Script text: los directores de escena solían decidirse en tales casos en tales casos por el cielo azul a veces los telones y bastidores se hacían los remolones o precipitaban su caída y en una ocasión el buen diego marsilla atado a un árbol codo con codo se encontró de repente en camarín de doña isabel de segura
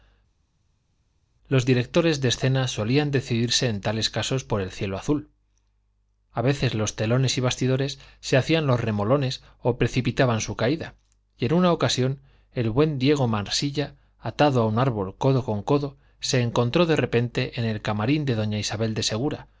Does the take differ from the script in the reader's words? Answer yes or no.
yes